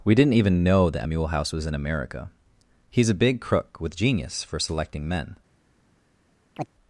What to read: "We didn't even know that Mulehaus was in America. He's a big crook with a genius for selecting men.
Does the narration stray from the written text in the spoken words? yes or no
yes